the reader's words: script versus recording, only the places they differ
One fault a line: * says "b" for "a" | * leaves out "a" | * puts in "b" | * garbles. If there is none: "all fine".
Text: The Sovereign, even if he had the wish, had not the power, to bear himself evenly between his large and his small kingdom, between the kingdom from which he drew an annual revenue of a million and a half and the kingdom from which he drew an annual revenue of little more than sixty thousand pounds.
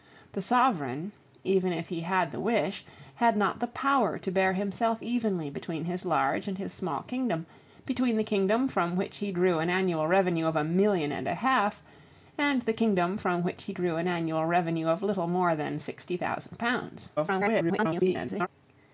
* garbles